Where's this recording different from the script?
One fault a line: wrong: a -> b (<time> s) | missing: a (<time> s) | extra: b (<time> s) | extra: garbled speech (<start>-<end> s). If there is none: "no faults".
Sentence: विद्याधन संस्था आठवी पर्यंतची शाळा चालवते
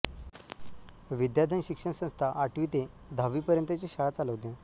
extra: शिक्षण (1.6 s)
extra: ते दहावी (2.7 s)